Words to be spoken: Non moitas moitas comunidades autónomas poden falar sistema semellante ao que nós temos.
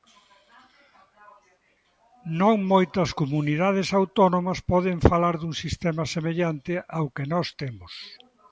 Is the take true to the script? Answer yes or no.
no